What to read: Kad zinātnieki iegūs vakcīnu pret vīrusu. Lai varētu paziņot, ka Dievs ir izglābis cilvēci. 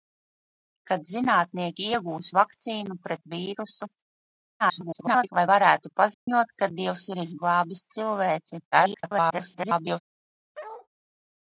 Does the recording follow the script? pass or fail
fail